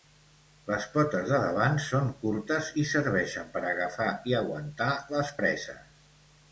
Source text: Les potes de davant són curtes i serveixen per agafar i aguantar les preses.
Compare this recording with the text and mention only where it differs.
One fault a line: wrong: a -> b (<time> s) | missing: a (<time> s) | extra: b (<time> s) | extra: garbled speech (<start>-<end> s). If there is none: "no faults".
no faults